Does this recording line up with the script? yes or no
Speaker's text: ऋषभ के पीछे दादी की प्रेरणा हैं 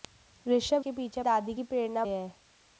yes